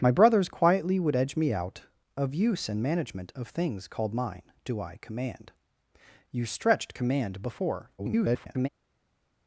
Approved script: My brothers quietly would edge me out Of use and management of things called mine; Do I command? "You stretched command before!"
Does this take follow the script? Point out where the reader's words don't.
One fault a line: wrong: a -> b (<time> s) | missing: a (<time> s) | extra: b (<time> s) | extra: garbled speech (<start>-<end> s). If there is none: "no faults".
extra: garbled speech (8.0-8.7 s)